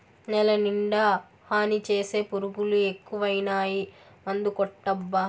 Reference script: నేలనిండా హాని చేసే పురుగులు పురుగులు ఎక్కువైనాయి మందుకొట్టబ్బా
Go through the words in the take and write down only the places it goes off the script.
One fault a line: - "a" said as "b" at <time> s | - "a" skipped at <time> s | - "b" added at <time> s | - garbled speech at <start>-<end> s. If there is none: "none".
- "పురుగులు" skipped at 2.8 s